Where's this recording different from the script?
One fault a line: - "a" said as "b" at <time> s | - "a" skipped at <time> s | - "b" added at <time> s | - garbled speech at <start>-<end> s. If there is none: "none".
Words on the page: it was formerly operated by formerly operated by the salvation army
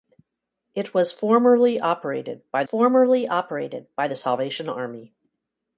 none